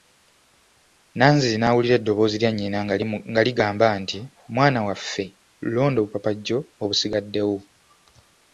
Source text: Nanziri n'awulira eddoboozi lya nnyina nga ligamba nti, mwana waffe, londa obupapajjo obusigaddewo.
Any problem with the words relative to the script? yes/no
no